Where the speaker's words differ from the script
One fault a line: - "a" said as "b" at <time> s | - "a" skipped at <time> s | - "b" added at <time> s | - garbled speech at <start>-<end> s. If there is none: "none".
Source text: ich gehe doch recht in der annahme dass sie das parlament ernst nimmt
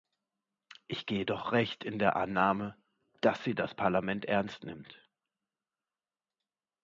none